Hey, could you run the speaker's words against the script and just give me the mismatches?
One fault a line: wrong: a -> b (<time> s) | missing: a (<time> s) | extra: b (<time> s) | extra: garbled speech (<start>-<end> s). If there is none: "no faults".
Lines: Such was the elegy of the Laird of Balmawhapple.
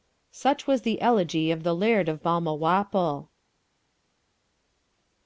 no faults